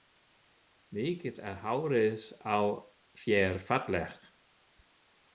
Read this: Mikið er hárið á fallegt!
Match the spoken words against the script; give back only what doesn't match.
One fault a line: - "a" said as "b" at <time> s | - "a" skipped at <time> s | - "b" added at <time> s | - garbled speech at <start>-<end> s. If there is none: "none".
- "þér" added at 3.2 s